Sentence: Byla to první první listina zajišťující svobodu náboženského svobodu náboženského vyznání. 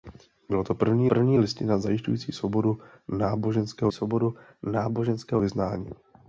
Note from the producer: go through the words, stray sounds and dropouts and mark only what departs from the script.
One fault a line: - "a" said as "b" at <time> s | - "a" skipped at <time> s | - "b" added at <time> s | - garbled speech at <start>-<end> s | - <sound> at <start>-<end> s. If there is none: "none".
none